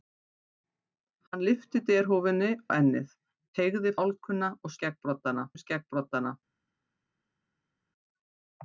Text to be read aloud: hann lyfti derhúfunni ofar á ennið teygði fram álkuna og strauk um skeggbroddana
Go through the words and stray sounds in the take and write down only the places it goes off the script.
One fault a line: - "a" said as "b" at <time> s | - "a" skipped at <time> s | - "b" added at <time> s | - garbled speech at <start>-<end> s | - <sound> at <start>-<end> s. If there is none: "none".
- "ofar" skipped at 2.5 s
- "fram" skipped at 3.9 s
- "strauk" said as "skeggbroddana" at 4.8 s